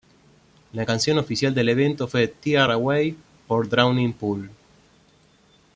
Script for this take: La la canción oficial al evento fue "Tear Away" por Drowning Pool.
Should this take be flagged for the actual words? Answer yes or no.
yes